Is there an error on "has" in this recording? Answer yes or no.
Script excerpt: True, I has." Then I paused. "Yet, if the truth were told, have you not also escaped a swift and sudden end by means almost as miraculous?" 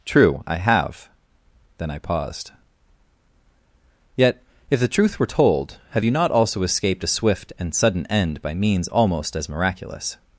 yes